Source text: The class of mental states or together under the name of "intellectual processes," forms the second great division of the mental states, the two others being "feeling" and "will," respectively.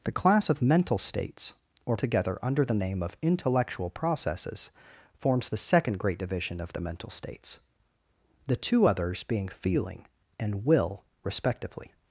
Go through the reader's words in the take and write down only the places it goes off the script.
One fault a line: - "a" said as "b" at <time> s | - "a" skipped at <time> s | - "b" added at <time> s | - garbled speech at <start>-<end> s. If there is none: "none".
none